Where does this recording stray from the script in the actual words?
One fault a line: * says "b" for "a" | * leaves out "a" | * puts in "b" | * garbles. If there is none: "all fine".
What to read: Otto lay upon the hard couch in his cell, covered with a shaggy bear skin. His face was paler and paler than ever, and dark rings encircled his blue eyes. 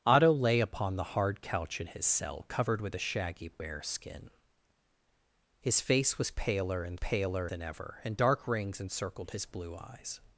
all fine